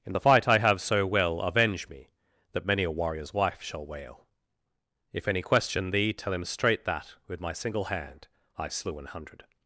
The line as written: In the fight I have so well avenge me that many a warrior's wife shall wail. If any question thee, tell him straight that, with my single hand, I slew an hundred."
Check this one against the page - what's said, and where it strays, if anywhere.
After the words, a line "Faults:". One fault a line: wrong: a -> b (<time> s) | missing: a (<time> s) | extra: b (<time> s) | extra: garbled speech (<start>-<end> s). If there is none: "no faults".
In the fight I have so well avenge me that many a warrior's wife shall wail. If any question thee, tell him straight that, with my single hand, I slew an hundred."
Faults:
no faults